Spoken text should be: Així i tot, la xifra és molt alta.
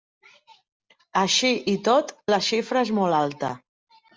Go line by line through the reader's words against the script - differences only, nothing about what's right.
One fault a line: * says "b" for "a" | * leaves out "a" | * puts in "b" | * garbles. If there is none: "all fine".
all fine